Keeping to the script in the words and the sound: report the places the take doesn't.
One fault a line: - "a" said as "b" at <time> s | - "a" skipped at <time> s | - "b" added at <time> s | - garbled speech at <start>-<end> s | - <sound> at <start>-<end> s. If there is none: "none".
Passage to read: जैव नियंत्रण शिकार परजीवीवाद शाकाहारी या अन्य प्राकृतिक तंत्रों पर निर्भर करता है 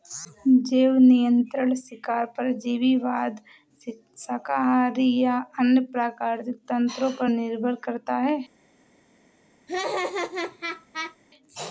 - laugh at 9.7-11.2 s